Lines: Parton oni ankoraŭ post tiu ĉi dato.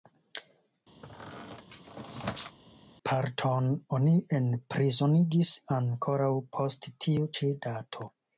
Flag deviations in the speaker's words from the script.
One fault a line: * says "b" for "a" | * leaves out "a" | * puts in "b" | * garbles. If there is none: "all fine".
* puts in "enprizonigis"